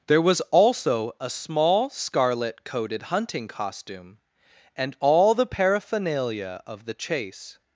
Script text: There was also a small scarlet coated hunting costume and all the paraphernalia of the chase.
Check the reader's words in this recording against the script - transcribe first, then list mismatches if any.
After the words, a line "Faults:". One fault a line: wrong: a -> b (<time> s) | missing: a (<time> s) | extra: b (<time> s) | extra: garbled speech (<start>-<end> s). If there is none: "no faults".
There was also a small scarlet coated hunting costume and all the paraphernalia of the chase.
Faults:
no faults